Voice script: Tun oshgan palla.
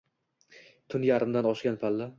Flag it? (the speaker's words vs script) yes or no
yes